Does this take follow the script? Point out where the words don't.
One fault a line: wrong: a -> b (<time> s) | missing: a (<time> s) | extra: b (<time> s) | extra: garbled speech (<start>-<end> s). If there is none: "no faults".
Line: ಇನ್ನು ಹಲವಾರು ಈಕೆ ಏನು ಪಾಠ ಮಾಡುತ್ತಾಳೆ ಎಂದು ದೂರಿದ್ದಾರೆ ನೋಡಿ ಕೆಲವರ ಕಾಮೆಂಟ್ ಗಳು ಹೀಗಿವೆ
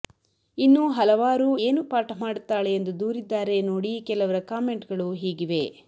missing: ಈಕೆ (1.5 s)